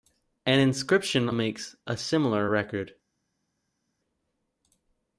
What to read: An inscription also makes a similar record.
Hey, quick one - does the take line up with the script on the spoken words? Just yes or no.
no